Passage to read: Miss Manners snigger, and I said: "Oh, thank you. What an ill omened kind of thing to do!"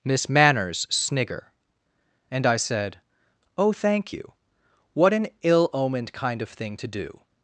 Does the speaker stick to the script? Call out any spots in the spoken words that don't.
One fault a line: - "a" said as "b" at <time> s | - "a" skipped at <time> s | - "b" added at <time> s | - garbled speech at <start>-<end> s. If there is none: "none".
none